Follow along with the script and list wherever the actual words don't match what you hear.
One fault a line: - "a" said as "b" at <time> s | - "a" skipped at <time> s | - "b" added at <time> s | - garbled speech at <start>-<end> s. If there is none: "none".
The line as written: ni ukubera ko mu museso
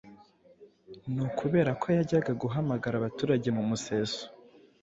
- "yajyaga guhamagara abaturage" added at 2.0 s